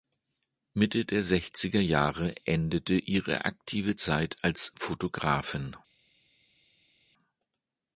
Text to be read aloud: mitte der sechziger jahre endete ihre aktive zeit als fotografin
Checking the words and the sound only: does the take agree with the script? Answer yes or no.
yes